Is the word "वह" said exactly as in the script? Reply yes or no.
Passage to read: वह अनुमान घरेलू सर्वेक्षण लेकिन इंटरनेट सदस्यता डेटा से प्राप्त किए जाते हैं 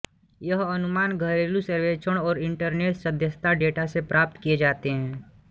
no